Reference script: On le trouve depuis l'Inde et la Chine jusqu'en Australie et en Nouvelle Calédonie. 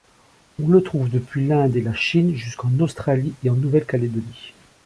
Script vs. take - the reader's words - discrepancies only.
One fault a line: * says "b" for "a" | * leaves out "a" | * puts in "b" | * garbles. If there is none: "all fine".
all fine